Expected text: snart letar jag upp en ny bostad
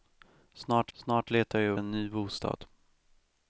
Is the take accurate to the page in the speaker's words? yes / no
no